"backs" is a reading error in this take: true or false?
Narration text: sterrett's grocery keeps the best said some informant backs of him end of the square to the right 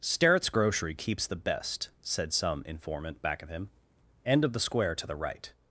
true